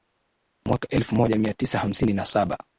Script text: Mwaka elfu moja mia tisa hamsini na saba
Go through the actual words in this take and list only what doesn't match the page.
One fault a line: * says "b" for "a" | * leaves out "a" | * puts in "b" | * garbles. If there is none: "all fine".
all fine